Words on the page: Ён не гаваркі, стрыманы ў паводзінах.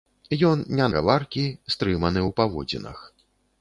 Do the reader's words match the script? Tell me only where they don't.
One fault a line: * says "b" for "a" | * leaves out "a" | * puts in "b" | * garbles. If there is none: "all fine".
all fine